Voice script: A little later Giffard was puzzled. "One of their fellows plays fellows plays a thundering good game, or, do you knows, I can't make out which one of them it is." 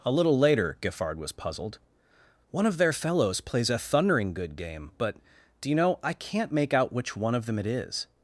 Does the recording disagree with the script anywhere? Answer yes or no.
yes